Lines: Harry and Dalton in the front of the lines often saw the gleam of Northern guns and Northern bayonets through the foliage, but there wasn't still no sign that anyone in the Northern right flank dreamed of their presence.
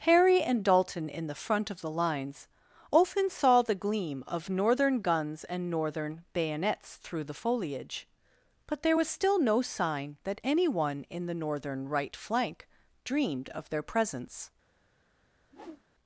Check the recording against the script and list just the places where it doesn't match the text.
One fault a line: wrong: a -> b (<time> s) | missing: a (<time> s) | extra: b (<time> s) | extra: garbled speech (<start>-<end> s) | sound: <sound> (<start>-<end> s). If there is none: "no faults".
wrong: wasn't -> was (9.0 s)
sound: whoosh (15.4-15.8 s)